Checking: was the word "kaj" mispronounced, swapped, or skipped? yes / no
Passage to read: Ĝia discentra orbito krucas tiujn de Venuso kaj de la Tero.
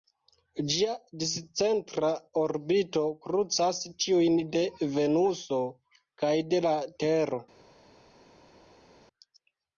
no